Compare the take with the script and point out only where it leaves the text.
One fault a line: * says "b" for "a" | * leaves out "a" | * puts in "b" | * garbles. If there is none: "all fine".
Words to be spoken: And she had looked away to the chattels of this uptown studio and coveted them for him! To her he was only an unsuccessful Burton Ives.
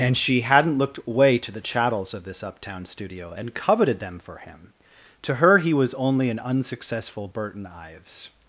* says "hadn't" for "had"